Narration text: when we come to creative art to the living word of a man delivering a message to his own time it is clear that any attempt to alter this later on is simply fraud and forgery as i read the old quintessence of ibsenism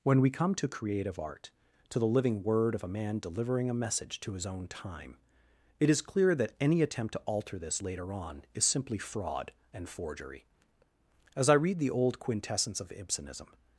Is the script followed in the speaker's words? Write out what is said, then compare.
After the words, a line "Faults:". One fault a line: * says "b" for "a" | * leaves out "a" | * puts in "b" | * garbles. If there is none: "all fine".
when we come to creative art to the living word of a man delivering a message to his own time it is clear that any attempt to alter this later on is simply fraud and forgery as i read the old quintessence of ibsenism
Faults:
all fine